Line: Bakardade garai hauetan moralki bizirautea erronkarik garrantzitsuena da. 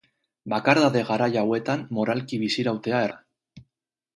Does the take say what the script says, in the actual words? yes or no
no